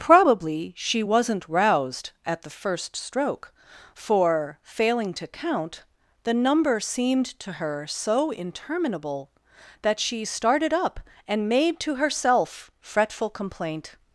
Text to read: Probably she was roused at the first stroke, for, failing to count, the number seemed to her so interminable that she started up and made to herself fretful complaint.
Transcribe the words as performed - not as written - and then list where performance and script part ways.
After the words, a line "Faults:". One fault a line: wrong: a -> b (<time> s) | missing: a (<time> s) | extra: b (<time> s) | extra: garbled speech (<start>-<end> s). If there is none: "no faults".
Probably she wasn't roused at the first stroke, for, failing to count, the number seemed to her so interminable that she started up and made to herself fretful complaint.
Faults:
wrong: was -> wasn't (1.0 s)